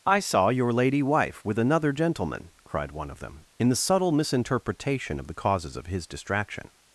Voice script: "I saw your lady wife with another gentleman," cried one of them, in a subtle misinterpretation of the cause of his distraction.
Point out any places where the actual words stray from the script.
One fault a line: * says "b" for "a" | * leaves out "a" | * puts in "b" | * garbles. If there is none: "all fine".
* says "the" for "a"
* says "causes" for "cause"